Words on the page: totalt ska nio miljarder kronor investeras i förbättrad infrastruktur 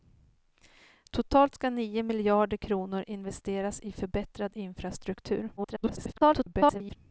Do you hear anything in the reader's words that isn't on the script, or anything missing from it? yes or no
yes